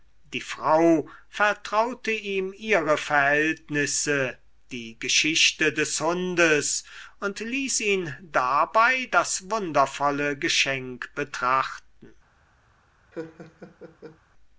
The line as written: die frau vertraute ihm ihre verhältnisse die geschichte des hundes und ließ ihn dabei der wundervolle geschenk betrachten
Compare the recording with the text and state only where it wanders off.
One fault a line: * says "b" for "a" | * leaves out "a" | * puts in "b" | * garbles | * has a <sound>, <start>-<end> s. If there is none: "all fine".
* says "das" for "der"
* has a laugh, 13.1-14.2 s